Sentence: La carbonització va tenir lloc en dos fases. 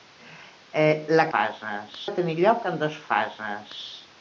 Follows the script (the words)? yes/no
no